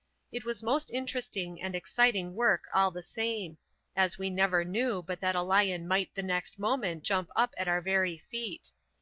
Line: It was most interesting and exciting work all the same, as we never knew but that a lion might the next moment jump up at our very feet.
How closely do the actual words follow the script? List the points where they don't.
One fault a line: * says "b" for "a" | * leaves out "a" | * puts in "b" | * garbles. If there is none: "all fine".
all fine